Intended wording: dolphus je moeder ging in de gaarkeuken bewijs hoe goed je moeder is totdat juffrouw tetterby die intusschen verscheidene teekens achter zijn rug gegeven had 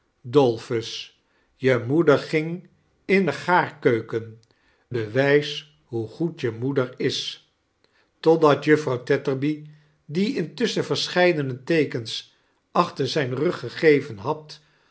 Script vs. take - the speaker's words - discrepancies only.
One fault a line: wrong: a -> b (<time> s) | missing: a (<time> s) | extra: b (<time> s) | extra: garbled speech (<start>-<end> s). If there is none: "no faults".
no faults